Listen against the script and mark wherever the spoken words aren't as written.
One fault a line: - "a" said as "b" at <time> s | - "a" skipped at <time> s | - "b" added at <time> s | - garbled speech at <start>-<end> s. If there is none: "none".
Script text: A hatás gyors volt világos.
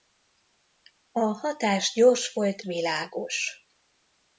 none